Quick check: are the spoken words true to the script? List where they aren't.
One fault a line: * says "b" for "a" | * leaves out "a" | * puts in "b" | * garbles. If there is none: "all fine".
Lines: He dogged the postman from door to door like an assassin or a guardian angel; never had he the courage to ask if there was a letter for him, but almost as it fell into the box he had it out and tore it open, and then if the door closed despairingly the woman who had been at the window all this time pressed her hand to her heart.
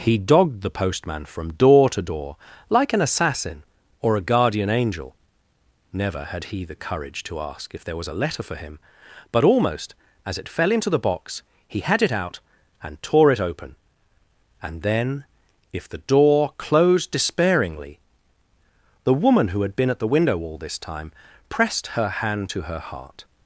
all fine